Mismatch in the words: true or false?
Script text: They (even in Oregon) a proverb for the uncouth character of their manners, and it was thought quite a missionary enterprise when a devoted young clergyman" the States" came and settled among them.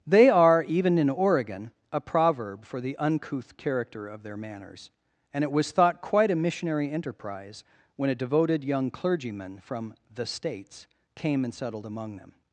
true